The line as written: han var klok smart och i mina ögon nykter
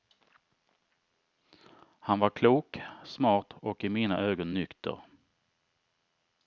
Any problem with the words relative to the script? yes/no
no